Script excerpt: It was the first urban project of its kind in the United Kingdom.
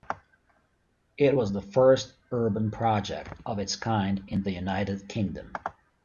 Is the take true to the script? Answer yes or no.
yes